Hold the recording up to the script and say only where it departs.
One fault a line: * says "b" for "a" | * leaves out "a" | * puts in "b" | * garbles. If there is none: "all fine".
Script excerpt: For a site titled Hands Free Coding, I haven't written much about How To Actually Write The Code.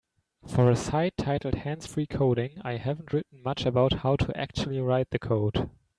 all fine